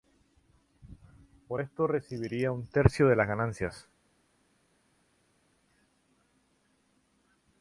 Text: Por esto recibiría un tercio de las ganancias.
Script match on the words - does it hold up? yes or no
yes